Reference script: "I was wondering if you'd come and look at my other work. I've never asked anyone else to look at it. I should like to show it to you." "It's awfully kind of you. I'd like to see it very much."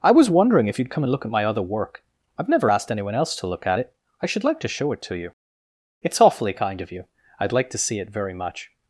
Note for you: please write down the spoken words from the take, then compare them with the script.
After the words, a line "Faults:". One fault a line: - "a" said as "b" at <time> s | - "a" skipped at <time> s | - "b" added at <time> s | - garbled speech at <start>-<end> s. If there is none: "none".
"I was wondering if you'd come and look at my other work. I've never asked anyone else to look at it. I should like to show it to you." "It's awfully kind of you. I'd like to see it very much."
Faults:
none